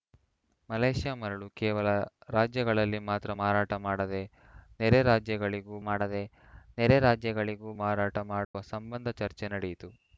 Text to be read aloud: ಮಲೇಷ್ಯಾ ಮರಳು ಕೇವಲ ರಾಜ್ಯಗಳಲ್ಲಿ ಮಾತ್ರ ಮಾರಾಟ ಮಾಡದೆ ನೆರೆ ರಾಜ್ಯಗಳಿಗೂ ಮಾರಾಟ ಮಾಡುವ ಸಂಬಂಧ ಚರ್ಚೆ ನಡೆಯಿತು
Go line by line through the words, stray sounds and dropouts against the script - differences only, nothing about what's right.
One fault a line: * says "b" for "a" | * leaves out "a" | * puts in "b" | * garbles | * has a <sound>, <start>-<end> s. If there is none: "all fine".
* puts in "ಮಾಡದೆ ನೆರೆ ರಾಜ್ಯಗಳಿಗೂ"
* has a dropout, 8.4-8.5 s